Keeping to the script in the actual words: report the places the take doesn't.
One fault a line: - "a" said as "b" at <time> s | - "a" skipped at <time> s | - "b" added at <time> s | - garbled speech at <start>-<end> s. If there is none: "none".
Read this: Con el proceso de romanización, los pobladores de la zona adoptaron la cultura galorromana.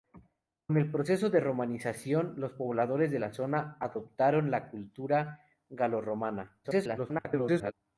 - garbled speech at 6.6-7.7 s